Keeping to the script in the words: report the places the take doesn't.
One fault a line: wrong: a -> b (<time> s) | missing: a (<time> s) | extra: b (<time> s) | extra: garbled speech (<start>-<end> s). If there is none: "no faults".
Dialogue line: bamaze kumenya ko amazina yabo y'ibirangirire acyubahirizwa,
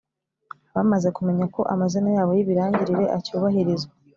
no faults